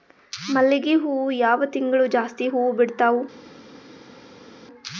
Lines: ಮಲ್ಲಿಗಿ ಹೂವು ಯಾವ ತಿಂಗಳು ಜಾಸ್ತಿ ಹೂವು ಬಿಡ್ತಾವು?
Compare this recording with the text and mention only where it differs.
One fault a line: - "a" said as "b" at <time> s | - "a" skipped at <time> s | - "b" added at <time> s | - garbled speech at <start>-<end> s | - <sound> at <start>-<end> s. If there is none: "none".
none